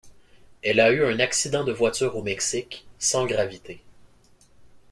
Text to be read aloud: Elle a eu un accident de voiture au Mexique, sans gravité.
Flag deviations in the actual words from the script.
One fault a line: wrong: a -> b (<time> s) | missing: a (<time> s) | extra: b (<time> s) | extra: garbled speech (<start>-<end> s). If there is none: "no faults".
no faults